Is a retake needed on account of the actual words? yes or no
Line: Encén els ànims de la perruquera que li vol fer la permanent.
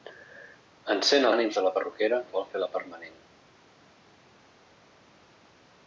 yes